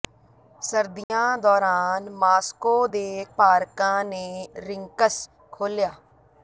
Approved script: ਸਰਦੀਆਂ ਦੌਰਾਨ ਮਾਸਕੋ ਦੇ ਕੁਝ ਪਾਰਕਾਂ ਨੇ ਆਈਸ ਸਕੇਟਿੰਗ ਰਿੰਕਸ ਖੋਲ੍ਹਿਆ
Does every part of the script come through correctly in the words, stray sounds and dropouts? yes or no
no